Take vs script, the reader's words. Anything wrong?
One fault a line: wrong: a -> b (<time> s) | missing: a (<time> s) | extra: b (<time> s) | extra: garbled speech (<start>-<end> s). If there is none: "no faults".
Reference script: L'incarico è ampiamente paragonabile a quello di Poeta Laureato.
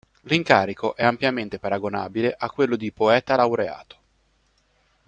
no faults